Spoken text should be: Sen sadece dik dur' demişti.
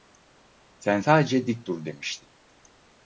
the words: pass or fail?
pass